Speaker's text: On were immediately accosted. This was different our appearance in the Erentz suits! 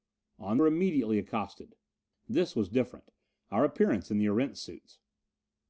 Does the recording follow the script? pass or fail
pass